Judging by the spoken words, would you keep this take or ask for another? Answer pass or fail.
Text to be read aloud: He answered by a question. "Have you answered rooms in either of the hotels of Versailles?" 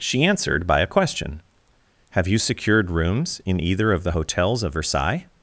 fail